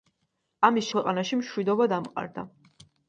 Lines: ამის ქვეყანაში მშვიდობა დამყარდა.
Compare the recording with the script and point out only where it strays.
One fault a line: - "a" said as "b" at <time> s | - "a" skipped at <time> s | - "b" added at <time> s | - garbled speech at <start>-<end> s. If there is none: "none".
none